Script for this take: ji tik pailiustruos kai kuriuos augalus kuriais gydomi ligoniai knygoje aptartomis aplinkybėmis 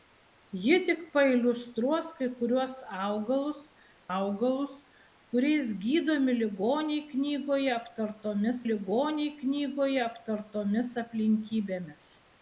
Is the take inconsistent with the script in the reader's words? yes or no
yes